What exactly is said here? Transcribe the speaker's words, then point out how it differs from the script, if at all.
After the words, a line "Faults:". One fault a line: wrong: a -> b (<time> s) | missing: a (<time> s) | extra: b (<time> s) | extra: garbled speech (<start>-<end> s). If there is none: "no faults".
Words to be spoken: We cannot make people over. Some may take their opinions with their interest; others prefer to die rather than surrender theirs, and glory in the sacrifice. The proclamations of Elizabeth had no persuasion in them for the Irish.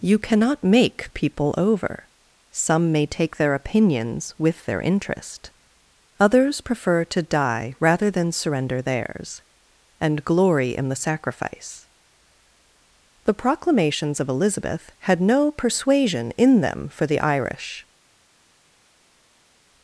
You cannot make people over. Some may take their opinions with their interest; others prefer to die rather than surrender theirs, and glory in the sacrifice. The proclamations of Elizabeth had no persuasion in them for the Irish.
Faults:
wrong: We -> You (0.0 s)